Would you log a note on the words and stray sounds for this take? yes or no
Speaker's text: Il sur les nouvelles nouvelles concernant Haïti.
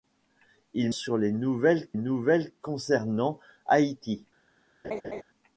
yes